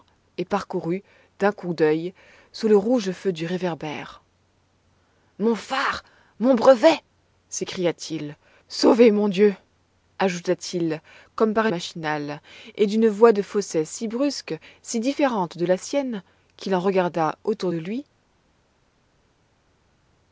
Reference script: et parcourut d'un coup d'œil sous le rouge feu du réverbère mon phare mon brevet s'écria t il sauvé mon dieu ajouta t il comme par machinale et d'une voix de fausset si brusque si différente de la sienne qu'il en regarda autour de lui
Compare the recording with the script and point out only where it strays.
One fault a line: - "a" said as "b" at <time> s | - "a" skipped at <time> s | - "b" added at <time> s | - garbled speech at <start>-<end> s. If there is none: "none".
none